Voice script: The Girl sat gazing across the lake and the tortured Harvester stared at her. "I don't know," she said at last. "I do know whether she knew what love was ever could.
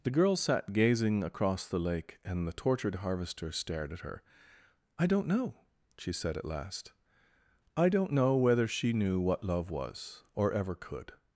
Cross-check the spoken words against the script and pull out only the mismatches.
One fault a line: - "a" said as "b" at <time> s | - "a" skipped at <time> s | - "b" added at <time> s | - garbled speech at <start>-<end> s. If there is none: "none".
- "do" said as "don't" at 7.9 s
- "or" added at 10.3 s